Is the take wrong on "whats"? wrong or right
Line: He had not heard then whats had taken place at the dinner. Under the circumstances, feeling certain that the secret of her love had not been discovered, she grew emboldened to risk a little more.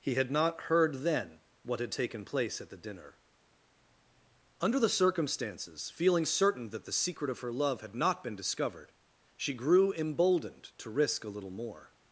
wrong